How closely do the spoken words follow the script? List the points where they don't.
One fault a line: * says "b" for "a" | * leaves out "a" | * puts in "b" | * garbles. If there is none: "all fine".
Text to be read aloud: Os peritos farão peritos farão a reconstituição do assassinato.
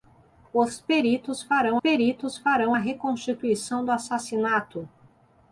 all fine